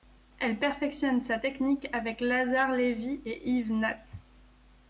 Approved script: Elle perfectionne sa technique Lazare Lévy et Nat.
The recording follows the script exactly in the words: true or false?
false